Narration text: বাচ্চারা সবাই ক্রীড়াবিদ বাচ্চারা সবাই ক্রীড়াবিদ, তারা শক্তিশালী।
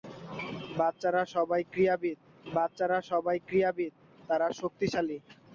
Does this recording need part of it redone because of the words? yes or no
no